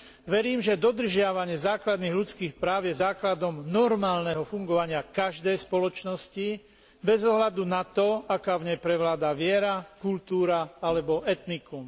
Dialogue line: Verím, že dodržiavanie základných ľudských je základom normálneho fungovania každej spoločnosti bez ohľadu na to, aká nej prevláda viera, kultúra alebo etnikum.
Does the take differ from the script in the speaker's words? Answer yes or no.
yes